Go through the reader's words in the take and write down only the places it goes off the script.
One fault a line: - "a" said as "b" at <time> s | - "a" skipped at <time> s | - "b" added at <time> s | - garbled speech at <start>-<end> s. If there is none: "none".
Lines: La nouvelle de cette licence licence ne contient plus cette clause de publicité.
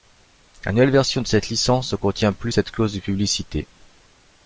- "version" added at 0.9 s
- "licence" skipped at 1.9 s